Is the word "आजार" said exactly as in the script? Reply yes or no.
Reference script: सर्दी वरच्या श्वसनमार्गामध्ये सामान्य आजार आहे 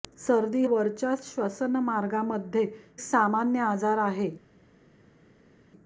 yes